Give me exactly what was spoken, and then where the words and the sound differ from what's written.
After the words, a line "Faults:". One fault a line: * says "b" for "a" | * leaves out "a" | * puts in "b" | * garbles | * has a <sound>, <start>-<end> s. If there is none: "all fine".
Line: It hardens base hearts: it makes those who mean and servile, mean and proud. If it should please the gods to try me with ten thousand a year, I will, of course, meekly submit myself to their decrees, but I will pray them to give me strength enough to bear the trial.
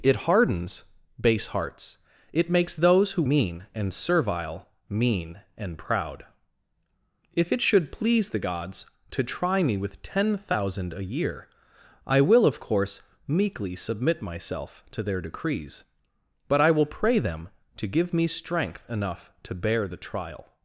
It hardens base hearts: it makes those who mean and servile, mean and proud. If it should please the gods to try me with ten thousand a year, I will, of course, meekly submit myself to their decrees, but I will pray them to give me strength enough to bear the trial.
Faults:
all fine